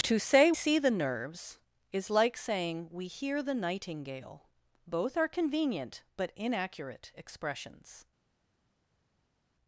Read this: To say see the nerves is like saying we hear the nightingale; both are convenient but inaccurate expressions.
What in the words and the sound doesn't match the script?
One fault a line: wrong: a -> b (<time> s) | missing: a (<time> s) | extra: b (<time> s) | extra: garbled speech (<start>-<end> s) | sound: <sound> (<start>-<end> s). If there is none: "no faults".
no faults